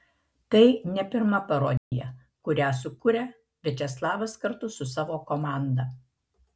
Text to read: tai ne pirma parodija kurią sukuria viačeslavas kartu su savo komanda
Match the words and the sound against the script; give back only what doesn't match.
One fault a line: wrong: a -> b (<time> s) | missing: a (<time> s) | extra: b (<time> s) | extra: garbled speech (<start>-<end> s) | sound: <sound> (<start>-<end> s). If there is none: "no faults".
sound: dropout (1.8-1.9 s)